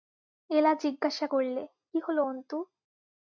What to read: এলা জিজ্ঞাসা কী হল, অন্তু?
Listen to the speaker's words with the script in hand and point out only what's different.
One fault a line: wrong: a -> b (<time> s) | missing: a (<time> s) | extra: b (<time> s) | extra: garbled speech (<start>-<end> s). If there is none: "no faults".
extra: করলে (1.2 s)